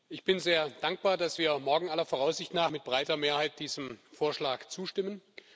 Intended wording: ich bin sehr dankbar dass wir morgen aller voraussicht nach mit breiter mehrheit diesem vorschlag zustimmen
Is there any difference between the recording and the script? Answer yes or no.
no